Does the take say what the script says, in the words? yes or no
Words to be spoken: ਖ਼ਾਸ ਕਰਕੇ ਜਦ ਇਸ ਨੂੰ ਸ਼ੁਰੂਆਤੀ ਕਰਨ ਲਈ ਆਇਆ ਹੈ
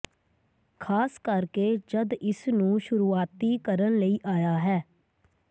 yes